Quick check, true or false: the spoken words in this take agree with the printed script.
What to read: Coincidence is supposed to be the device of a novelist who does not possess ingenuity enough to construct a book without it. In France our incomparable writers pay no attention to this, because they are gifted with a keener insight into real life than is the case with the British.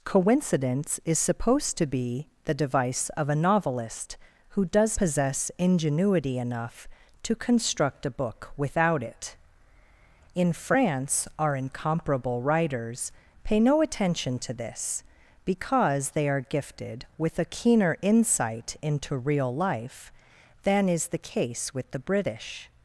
false